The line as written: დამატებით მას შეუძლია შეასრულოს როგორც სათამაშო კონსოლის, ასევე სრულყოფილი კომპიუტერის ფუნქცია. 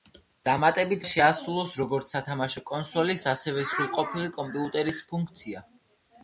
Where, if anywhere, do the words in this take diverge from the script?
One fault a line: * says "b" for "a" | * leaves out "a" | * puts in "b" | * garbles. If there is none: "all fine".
* leaves out "მას შეუძლია"